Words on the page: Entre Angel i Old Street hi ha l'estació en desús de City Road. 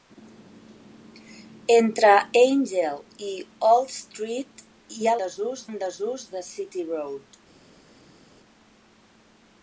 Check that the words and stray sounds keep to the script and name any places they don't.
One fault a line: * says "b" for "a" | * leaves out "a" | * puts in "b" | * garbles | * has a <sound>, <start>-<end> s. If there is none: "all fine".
* says "desús" for "l'estació"